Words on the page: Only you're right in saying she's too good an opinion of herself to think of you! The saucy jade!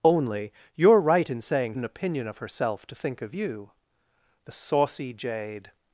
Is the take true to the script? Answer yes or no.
no